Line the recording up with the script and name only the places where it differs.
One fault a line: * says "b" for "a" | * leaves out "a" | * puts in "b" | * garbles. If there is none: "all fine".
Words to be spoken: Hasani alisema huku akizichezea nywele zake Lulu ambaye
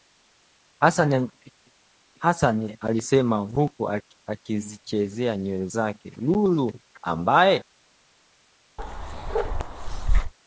all fine